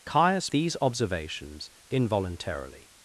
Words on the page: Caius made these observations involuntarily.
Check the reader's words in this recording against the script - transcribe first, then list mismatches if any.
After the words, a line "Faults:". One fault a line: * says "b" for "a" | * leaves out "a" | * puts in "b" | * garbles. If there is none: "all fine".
Caius these observations involuntarily.
Faults:
* leaves out "made"